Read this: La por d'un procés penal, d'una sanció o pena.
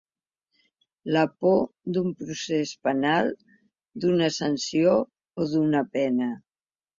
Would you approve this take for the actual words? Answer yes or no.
no